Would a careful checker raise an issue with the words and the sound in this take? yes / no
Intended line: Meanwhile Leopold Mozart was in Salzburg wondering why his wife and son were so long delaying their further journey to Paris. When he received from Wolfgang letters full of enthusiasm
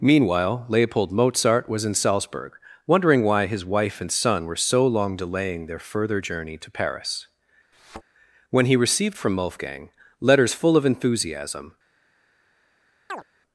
yes